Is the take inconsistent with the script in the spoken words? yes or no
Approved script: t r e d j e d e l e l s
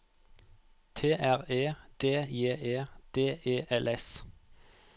yes